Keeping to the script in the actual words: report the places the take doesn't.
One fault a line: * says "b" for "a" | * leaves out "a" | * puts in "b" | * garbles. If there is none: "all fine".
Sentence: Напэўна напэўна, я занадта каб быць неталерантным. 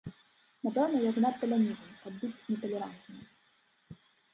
* leaves out "напэўна"
* puts in "лянівы"